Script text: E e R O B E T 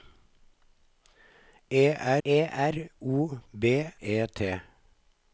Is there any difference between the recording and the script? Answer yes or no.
no